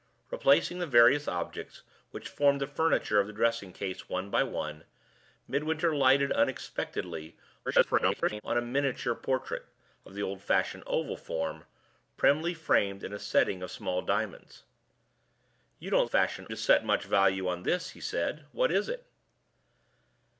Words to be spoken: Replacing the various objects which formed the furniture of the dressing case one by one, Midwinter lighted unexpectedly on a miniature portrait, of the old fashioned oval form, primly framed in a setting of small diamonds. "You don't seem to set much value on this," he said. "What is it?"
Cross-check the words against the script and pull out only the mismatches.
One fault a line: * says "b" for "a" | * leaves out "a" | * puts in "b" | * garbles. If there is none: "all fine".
* garbles
* says "fashioned" for "seem"